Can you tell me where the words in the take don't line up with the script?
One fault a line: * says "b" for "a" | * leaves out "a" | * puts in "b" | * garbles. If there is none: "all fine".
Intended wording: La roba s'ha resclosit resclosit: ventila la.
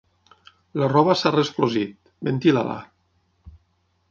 * leaves out "resclosit"